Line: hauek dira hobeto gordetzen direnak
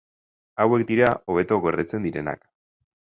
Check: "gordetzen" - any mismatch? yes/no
no